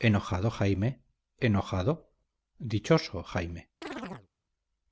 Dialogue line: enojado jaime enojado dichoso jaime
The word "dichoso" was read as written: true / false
true